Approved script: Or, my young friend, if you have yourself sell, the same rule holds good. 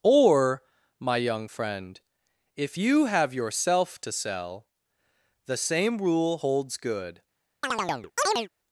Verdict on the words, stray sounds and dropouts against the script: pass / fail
fail